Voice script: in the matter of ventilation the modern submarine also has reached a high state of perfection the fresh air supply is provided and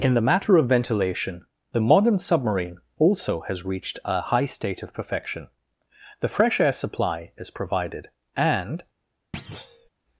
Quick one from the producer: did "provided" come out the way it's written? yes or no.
yes